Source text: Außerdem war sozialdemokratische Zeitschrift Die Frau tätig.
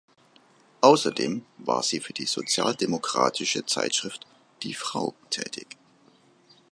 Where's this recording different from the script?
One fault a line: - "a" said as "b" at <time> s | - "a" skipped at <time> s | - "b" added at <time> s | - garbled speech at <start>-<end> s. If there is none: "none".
- "sie für die" added at 1.8 s